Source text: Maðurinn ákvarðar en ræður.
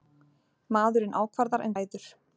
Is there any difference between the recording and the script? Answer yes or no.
no